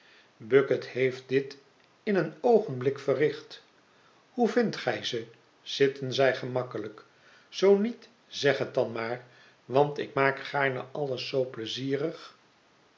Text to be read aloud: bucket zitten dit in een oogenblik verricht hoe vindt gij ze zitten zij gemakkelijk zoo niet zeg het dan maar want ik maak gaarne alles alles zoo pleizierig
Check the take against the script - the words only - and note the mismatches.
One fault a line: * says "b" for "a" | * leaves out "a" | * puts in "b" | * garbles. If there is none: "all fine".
* says "heeft" for "zitten"
* leaves out "alles"